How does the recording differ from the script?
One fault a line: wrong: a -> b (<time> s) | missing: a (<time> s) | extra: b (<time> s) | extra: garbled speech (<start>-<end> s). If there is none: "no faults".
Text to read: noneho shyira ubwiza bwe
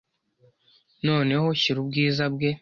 no faults